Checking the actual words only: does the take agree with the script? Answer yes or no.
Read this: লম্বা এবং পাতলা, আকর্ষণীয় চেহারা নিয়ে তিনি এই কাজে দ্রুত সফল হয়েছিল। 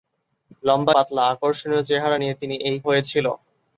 no